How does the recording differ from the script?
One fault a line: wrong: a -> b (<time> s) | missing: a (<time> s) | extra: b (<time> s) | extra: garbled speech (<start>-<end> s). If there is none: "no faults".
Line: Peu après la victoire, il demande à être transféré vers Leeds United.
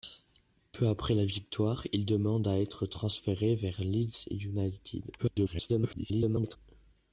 extra: garbled speech (5.2-6.6 s)